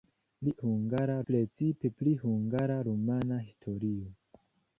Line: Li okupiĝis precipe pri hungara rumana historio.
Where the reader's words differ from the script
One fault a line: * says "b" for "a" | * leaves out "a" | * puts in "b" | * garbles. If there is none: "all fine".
* says "hungara" for "okupiĝis"